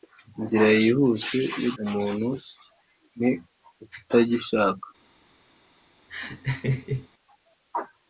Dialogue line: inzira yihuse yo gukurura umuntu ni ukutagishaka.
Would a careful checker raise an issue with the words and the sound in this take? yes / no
yes